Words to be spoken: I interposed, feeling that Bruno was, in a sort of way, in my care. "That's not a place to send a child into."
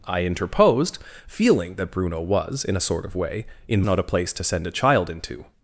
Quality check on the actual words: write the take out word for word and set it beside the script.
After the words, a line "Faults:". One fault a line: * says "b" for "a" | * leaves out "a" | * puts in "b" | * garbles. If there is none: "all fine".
I interposed, feeling that Bruno was, in a sort of way, in not a place to send a child into."
Faults:
* leaves out "my care That's"